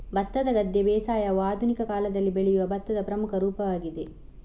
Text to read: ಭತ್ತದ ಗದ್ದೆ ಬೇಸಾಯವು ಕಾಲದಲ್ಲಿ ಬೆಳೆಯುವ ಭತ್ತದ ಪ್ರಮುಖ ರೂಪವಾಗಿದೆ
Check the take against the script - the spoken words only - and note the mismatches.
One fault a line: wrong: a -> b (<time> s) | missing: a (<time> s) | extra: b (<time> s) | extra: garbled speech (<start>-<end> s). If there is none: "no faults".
extra: ಆಧುನಿಕ (1.4 s)